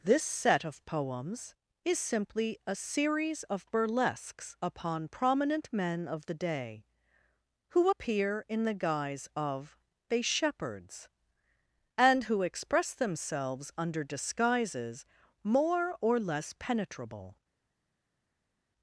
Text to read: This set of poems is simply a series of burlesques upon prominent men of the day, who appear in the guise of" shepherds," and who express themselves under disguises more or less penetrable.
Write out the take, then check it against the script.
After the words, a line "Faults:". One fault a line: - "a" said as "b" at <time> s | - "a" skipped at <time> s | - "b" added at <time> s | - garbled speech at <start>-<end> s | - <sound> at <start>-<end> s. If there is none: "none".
This set of poems is simply a series of burlesques upon prominent men of the day, who appear in the guise of" they shepherds," and who express themselves under disguises more or less penetrable.
Faults:
- "they" added at 10.1 s